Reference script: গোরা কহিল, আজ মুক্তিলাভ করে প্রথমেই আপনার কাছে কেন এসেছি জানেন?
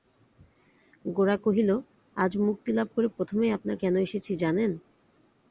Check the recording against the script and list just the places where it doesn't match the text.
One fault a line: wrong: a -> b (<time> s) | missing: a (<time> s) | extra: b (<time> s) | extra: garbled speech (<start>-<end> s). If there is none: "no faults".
missing: কাছে (3.8 s)